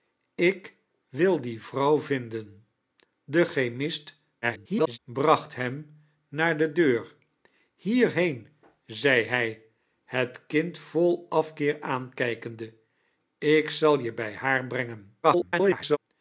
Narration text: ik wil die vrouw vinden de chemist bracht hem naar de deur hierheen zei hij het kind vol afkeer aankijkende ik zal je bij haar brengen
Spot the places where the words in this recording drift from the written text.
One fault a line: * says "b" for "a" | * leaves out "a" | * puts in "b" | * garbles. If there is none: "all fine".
* garbles
* garbles